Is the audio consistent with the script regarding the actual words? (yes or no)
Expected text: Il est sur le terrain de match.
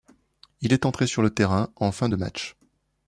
no